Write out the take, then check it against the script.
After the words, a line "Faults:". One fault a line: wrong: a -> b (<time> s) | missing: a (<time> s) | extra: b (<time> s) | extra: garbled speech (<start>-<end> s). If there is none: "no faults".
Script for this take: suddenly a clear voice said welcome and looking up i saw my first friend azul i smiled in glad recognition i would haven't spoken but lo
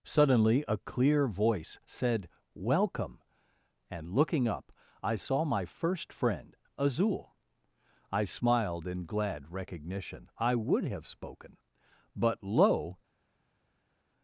suddenly a clear voice said welcome and looking up i saw my first friend azul i smiled in glad recognition i would have spoken but lo
Faults:
wrong: haven't -> have (10.8 s)